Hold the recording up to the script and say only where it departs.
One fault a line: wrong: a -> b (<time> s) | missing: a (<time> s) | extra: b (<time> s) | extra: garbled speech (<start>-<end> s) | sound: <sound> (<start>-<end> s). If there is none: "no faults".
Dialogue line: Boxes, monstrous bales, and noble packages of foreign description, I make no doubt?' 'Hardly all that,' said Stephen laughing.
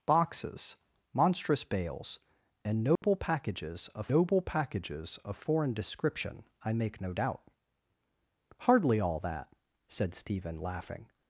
sound: dropout (3.0-3.0 s)
extra: noble packages of (4.1 s)